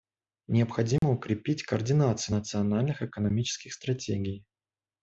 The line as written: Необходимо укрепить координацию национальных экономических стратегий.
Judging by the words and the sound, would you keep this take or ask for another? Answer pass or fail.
fail